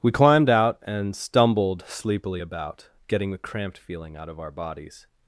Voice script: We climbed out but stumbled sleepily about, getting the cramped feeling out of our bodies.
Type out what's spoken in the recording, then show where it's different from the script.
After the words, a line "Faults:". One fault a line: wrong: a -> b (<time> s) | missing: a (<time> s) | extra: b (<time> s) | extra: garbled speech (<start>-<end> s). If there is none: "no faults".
We climbed out and stumbled sleepily about, getting the cramped feeling out of our bodies.
Faults:
wrong: but -> and (0.8 s)